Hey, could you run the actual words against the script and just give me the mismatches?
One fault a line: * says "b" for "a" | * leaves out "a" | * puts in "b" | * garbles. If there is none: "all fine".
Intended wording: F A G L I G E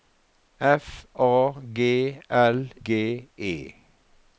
* leaves out "I"